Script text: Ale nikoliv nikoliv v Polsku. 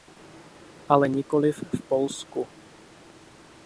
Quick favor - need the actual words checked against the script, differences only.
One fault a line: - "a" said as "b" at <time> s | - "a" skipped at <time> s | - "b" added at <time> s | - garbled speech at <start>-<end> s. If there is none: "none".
- "nikoliv" skipped at 1.6 s